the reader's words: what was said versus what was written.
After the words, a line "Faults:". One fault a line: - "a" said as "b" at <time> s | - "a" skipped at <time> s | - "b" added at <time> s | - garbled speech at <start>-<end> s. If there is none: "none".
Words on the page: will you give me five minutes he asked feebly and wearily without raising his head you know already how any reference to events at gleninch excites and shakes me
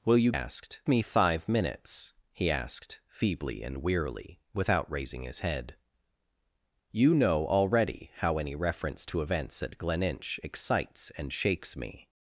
will you asked me five minutes he asked feebly and wearily without raising his head you know already how any reference to events at gleninch excites and shakes me
Faults:
- "give" said as "asked" at 0.3 s